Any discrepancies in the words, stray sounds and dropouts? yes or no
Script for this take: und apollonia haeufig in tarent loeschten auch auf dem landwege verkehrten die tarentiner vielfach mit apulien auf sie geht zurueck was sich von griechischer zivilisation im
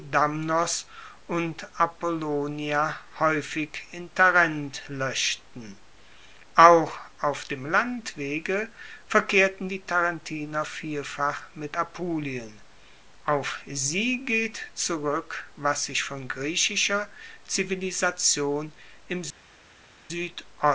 no